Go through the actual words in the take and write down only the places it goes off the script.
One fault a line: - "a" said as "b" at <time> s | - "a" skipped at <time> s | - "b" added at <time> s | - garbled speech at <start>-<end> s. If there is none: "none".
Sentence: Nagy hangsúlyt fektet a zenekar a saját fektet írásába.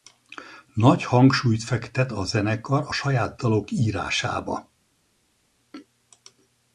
- "fektet" said as "dalok" at 3.3 s